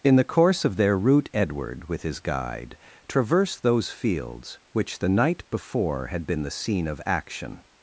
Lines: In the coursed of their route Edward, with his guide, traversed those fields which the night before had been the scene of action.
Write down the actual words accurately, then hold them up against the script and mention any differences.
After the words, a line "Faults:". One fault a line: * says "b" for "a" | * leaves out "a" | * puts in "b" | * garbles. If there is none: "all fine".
In the course of their route Edward, with his guide, traversed those fields which the night before had been the scene of action.
Faults:
* says "course" for "coursed"